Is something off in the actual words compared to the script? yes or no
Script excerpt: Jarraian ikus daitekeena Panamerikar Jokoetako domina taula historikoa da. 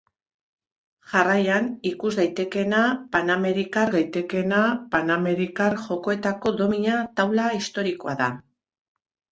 yes